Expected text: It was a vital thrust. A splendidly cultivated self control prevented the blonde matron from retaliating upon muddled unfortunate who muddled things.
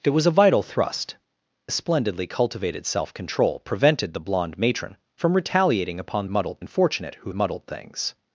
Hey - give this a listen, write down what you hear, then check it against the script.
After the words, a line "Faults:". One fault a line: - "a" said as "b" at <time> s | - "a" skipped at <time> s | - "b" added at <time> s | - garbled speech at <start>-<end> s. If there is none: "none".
It was a vital thrust. A splendidly cultivated self control prevented the blonde matron from retaliating upon muddled unfortunate who muddled things.
Faults:
none